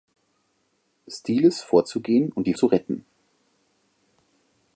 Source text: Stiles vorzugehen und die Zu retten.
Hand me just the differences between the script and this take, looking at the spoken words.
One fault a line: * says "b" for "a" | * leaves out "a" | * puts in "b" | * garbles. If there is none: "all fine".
all fine